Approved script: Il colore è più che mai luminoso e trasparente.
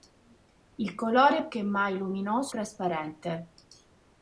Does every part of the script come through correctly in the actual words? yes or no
no